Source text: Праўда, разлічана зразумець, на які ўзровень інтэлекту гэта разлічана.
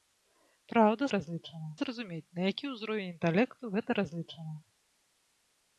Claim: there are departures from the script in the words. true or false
false